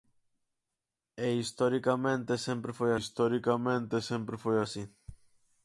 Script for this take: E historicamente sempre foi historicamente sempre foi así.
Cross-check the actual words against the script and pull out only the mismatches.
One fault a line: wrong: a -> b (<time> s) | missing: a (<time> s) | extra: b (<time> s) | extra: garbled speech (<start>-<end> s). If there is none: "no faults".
no faults